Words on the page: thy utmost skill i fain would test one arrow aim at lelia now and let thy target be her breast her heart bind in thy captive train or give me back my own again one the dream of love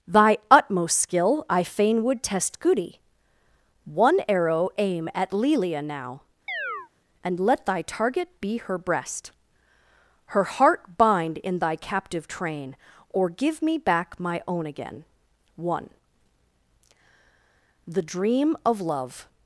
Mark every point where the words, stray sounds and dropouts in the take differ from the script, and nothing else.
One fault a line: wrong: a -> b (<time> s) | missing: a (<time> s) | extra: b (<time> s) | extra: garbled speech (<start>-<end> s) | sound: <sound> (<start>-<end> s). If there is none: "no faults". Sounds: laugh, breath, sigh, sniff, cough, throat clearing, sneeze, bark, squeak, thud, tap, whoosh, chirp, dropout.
extra: goody (2.6 s)
sound: chirp (6.5-6.9 s)